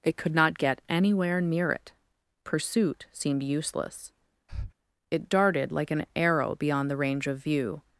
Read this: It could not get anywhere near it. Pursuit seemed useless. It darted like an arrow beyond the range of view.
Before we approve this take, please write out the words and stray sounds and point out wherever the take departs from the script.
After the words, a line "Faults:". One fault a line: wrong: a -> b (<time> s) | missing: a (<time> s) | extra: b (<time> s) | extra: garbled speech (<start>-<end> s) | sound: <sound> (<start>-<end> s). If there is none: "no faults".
It could not get anywhere near it. Pursuit seemed useless. It darted like an arrow beyond the range of view.
Faults:
sound: breath (4.5-4.7 s)